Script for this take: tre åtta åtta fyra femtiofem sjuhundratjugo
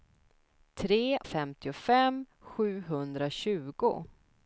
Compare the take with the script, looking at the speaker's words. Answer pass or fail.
fail